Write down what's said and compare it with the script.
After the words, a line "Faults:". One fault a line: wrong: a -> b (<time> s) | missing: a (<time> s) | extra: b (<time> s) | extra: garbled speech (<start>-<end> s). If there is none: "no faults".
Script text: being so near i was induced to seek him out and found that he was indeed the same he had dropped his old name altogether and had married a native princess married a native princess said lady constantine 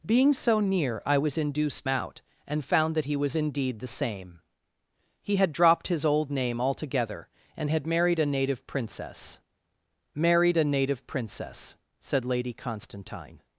being so near i was induced out and found that he was indeed the same he had dropped his old name altogether and had married a native princess married a native princess said lady constantine
Faults:
missing: to seek him (1.9 s)